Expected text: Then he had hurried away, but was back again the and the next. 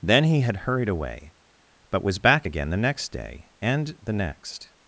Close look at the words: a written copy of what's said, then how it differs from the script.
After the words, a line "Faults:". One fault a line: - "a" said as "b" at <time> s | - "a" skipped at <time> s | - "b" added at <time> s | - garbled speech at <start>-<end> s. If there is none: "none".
Then he had hurried away, but was back again the next day, and the next.
Faults:
- "next day" added at 2.8 s